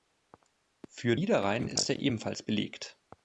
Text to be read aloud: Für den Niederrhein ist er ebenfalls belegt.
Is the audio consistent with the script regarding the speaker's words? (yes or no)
no